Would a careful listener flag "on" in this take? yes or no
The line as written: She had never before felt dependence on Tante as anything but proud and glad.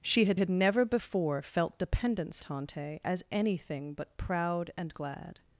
yes